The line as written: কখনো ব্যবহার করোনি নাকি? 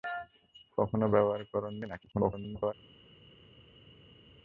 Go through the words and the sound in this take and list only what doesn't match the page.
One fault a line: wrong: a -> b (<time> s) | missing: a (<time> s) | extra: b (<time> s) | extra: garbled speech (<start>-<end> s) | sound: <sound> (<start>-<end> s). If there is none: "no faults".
extra: garbled speech (2.1-2.7 s)